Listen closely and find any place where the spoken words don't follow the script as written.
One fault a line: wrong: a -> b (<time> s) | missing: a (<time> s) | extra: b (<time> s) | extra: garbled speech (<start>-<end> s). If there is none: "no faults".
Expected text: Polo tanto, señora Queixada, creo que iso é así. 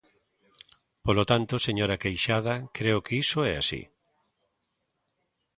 no faults